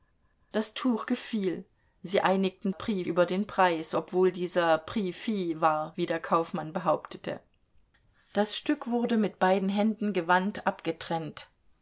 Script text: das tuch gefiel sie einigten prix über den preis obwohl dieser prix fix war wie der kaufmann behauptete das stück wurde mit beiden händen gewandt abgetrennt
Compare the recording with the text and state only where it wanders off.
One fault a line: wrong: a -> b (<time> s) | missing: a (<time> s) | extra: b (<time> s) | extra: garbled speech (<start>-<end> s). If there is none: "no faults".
no faults